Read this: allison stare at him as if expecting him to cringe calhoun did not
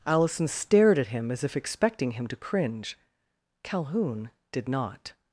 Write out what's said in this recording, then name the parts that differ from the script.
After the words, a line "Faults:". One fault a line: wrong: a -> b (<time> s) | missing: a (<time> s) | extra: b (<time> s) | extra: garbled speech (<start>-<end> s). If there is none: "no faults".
allison stared at him as if expecting him to cringe calhoun did not
Faults:
wrong: stare -> stared (0.5 s)